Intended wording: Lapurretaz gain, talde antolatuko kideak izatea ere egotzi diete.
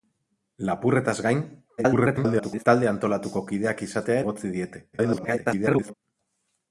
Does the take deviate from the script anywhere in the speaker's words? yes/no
yes